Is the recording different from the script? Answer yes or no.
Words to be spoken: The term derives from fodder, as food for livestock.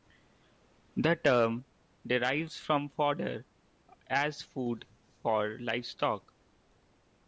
no